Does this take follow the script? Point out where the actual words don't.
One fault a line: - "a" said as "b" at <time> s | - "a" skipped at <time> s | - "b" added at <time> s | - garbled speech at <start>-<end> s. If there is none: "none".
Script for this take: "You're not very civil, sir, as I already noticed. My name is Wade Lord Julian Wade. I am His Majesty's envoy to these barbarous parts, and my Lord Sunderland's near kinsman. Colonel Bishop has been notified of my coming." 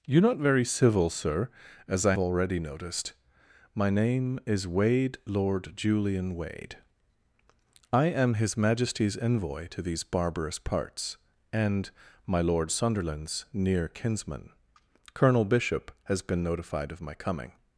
none